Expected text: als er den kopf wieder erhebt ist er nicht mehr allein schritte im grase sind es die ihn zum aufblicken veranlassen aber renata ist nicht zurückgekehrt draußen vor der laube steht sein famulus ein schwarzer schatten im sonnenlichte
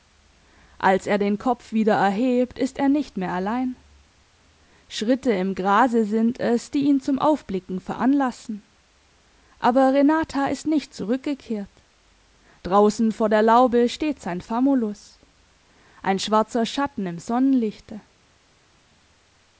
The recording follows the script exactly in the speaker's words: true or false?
true